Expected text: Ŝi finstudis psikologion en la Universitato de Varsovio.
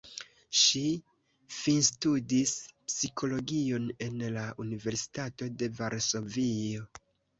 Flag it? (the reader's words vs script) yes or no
no